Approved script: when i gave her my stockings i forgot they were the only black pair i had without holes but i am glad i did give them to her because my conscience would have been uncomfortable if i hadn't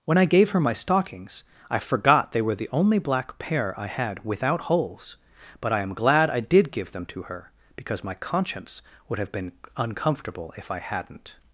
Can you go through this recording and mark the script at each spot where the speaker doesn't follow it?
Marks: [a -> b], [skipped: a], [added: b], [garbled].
when i gave her my stockings i forgot they were the only black pair i had without holes but i am glad i did give them to her because my conscience would have been uncomfortable if i hadn't